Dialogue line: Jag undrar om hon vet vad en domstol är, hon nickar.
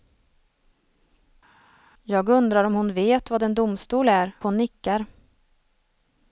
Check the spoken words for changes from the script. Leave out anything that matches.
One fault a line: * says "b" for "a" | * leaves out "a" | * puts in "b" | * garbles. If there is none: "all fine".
all fine